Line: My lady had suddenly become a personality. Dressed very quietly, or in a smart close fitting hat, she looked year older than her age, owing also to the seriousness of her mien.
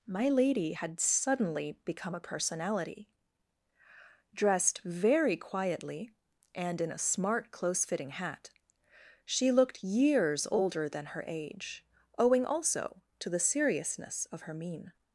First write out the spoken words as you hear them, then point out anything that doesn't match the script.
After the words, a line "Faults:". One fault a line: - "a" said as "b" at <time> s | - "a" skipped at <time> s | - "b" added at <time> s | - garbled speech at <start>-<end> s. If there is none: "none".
My lady had suddenly become a personality. Dressed very quietly, and in a smart close fitting hat, she looked years older than her age, owing also to the seriousness of her mien.
Faults:
- "or" said as "and" at 6.5 s
- "year" said as "years" at 9.8 s